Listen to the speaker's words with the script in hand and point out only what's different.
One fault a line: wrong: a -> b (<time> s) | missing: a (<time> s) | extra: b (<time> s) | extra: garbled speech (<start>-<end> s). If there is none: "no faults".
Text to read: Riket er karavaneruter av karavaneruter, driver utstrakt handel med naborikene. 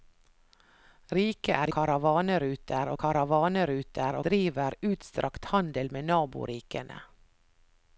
no faults